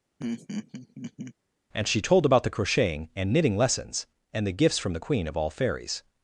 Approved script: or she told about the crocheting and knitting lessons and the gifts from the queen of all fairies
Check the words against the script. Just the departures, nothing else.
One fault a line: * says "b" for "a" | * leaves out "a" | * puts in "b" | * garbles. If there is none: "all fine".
* says "and" for "or"